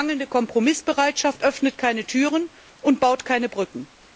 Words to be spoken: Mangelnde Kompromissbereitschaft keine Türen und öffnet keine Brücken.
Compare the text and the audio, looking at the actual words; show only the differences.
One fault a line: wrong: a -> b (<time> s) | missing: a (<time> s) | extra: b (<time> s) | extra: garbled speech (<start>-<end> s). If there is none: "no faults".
extra: öffnet (1.4 s)
wrong: öffnet -> baut (3.0 s)